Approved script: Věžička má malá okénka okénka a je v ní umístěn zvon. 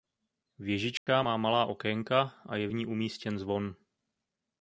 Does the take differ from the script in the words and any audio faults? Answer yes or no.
yes